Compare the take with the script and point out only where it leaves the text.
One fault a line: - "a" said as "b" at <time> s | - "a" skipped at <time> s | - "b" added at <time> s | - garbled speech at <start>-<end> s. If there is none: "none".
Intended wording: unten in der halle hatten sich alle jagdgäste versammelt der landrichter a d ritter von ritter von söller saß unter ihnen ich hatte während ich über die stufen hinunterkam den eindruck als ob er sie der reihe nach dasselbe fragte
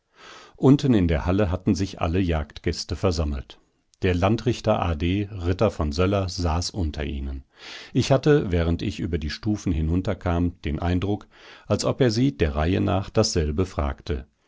- "ritter von" skipped at 5.9 s